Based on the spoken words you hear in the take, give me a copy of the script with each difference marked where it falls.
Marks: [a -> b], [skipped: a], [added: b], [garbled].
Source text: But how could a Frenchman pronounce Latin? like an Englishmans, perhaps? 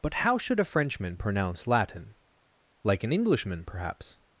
But how [could -> should] a Frenchman pronounce Latin? like an [Englishmans, -> Englishman] perhaps?